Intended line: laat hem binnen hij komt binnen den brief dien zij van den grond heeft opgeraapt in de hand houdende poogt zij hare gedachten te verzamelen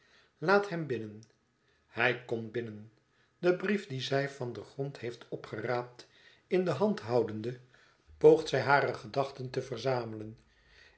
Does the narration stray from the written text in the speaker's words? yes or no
no